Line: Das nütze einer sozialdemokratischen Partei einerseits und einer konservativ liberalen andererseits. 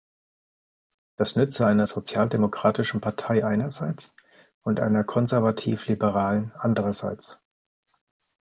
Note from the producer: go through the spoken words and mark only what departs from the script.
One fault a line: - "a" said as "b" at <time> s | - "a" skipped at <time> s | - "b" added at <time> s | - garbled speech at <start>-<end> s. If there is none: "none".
none